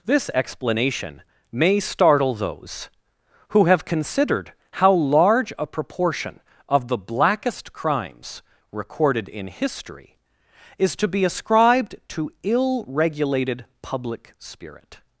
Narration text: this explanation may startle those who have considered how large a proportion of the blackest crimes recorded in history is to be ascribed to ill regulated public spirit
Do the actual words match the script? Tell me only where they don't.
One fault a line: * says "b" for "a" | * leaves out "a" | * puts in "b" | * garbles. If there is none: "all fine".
all fine